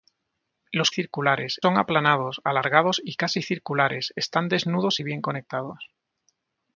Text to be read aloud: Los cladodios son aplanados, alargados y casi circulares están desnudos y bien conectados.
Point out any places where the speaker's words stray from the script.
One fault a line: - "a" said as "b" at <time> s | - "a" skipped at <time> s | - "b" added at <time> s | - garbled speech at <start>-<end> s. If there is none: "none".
- "cladodios" said as "circulares" at 0.9 s